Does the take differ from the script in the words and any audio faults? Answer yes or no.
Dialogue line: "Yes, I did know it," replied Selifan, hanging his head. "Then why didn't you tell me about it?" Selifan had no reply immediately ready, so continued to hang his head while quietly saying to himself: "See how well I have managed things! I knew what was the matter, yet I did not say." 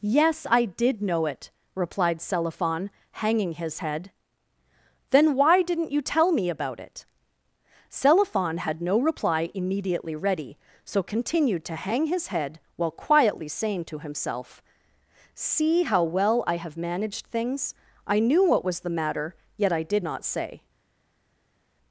no